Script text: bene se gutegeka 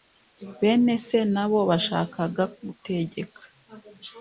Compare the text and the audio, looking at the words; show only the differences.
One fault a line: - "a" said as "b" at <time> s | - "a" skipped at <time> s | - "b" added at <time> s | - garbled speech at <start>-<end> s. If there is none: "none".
- "na bo bashakaga" added at 1.3 s